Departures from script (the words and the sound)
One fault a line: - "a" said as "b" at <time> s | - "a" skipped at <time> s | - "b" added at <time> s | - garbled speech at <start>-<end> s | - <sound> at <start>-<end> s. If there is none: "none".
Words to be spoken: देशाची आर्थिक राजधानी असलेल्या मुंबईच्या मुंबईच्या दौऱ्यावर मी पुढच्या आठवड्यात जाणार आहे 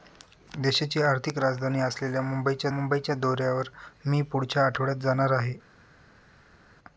none